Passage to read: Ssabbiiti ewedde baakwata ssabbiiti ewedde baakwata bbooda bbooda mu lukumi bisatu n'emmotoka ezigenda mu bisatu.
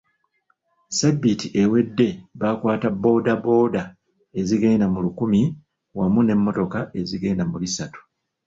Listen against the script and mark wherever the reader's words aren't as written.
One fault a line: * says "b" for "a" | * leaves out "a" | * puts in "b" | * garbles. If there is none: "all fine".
* says "bbooda" for "ssabbiiti ewedde baakwata"
* says "ezigenda" for "bbooda"
* says "wamu" for "bisatu"